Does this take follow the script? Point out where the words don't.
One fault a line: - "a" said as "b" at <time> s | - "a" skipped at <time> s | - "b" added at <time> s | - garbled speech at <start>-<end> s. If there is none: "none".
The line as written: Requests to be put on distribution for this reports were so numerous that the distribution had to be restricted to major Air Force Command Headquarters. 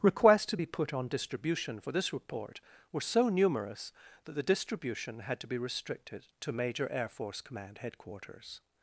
- "reports" said as "report" at 2.1 s